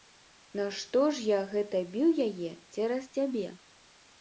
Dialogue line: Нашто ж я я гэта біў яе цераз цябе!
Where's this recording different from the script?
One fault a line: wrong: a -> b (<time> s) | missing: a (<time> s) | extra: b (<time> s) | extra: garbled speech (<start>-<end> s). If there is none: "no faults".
missing: я (1.4 s)